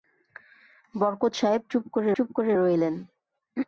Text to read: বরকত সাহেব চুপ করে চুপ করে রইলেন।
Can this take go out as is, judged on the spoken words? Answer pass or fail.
pass